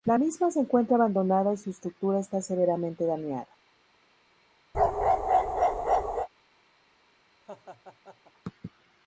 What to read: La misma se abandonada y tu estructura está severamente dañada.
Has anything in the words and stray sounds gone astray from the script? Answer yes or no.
yes